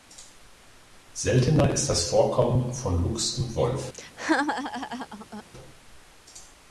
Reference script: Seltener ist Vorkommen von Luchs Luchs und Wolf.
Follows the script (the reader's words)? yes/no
no